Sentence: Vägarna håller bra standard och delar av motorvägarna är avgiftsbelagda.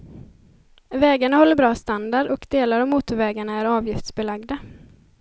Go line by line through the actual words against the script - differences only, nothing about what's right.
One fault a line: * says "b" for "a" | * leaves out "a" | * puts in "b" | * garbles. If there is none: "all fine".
all fine